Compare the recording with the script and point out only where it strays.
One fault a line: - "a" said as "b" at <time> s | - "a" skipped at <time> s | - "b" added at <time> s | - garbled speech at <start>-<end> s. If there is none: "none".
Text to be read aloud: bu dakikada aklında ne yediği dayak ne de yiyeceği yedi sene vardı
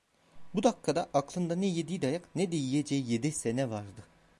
none